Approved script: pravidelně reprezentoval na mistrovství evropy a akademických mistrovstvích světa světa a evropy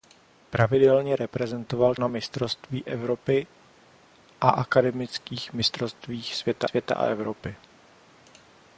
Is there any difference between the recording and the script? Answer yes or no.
no